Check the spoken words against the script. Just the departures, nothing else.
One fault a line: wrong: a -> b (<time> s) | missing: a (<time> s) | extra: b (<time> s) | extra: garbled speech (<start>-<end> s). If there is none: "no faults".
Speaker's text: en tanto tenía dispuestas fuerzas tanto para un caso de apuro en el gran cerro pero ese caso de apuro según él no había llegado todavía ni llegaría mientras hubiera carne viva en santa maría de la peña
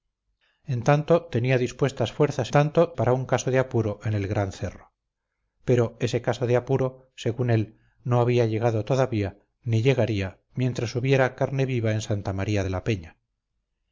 no faults